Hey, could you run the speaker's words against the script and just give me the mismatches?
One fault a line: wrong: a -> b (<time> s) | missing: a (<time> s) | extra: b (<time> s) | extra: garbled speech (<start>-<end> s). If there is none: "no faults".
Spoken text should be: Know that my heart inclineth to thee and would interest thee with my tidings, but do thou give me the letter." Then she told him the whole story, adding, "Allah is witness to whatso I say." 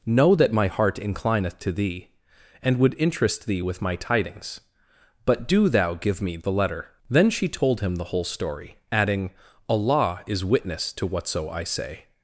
no faults